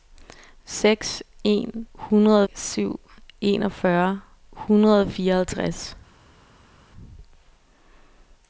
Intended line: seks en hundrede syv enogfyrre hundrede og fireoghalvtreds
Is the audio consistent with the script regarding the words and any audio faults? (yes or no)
yes